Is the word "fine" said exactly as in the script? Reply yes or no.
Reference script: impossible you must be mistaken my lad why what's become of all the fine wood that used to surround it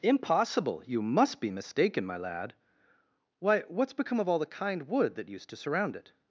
no